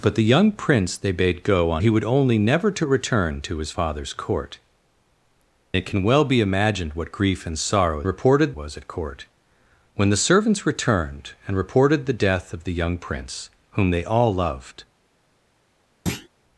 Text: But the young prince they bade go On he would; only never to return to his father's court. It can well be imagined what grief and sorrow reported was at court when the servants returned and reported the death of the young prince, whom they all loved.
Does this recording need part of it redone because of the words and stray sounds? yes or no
yes